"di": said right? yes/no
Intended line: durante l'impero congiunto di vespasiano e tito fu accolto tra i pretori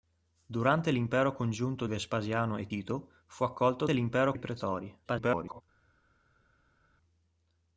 no